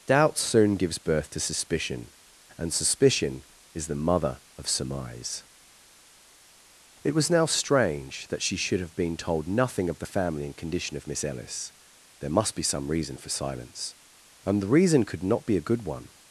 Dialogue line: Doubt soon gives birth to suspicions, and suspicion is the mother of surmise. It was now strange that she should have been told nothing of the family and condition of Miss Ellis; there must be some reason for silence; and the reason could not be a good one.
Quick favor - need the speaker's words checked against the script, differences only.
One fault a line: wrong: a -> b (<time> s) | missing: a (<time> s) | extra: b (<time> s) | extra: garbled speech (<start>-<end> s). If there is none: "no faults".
wrong: suspicions -> suspicion (1.4 s)